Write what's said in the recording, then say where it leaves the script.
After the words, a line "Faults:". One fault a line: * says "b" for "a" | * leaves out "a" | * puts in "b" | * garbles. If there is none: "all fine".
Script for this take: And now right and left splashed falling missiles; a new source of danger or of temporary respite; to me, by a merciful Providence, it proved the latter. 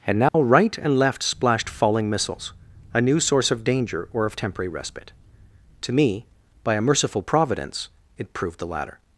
And now right and left splashed falling missiles; a new source of danger or of temporary respite; to me, by a merciful Providence, it proved the latter.
Faults:
all fine